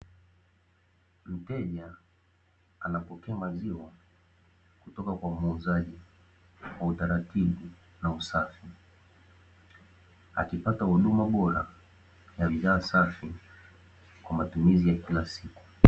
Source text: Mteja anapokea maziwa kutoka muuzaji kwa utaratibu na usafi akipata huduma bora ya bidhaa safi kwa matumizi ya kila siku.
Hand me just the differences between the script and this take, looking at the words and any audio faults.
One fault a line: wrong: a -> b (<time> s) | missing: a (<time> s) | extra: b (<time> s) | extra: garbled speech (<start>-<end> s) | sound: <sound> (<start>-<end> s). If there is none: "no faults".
extra: kwa (5.1 s)